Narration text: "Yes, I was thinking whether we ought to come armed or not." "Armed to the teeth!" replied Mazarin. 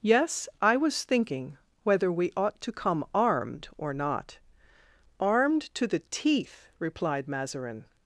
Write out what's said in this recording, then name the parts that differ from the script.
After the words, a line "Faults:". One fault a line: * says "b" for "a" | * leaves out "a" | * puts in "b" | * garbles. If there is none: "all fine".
"Yes, I was thinking whether we ought to come armed or not." "Armed to the teeth!" replied Mazarin.
Faults:
all fine